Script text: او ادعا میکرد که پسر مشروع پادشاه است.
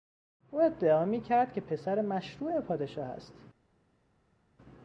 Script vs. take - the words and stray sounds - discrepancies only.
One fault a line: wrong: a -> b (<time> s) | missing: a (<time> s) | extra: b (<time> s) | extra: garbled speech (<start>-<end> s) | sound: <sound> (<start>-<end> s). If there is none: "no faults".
no faults